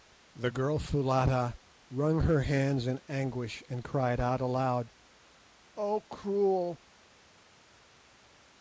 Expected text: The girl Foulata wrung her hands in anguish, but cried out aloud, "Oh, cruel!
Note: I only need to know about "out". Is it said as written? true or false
true